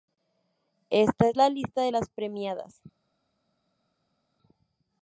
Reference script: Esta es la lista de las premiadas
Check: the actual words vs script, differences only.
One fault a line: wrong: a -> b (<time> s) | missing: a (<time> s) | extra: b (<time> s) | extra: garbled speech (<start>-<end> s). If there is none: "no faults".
no faults